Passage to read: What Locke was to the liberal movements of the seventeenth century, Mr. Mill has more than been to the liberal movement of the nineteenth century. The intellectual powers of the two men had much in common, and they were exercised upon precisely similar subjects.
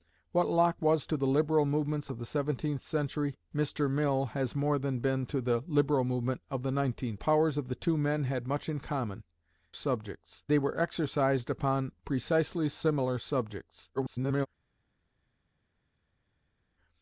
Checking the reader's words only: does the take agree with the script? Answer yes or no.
no